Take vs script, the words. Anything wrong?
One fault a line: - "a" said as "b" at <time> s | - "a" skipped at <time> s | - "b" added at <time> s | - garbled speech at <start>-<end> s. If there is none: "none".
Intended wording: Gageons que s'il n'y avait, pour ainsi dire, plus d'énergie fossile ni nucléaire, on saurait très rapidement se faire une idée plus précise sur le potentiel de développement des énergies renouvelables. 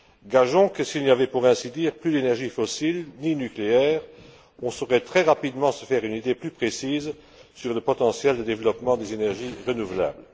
none